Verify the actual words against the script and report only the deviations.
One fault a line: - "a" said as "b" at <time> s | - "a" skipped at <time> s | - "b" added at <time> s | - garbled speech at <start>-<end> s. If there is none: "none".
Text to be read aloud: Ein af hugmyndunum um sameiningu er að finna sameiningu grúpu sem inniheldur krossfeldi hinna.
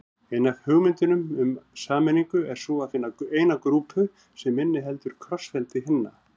- "sú" added at 2.6 s
- "sameiningu" said as "eina" at 3.4 s